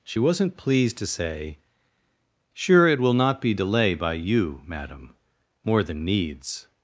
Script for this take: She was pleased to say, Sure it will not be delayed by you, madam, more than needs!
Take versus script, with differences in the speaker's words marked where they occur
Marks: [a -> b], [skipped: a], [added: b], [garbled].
She [was -> wasn't] pleased to say, Sure it will not be [delayed -> delay] by you, madam, more than needs!